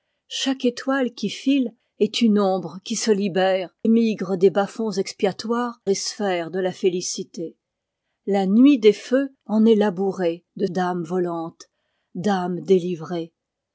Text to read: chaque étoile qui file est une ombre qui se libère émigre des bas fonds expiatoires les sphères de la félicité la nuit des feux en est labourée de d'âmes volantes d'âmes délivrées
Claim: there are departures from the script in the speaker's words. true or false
false